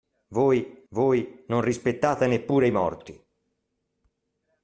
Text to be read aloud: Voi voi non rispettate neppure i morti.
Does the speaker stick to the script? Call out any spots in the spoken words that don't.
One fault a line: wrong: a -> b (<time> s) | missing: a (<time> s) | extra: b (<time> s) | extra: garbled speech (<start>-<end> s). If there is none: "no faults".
no faults